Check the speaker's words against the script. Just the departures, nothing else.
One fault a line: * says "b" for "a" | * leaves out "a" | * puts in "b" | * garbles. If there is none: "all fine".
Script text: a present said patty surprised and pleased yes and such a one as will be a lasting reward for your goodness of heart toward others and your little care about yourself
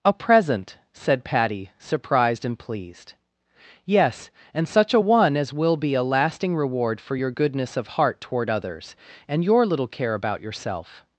all fine